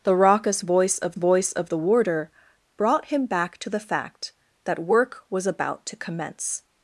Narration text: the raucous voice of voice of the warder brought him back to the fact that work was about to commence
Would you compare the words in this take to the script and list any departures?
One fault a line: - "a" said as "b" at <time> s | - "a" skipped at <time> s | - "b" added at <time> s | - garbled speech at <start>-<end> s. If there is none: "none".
none